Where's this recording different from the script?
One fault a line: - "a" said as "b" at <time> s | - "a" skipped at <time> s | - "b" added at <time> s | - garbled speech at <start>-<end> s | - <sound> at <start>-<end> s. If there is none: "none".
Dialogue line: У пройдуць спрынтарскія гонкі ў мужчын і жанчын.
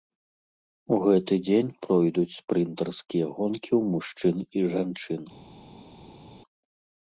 - "гэты дзень" added at 1.0 s